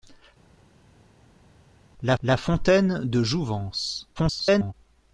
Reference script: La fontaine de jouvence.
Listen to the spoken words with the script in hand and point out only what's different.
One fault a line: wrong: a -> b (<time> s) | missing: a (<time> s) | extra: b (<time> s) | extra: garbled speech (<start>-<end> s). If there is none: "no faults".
extra: la (2.2 s)
extra: garbled speech (4.1-4.7 s)